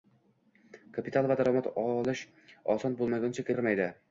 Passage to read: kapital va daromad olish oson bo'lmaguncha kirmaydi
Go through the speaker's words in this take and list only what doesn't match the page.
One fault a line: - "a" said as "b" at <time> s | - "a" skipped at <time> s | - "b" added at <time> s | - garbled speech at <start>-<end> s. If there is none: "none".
none